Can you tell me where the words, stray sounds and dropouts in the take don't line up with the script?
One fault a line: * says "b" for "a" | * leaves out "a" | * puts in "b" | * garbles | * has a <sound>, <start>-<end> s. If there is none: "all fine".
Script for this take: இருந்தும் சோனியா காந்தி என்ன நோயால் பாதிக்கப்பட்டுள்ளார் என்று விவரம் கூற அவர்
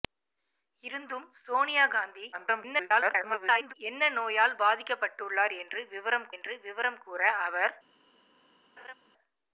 * garbles
* puts in "என்று விவரம்"
* has a laugh, 8.8-8.9 s